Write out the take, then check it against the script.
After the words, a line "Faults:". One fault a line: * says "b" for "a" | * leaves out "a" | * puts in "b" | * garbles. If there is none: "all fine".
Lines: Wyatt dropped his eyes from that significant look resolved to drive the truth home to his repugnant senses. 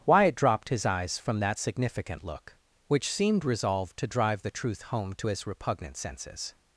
Wyatt dropped his eyes from that significant look which seemed resolved to drive the truth home to his repugnant senses.
Faults:
* puts in "which seemed"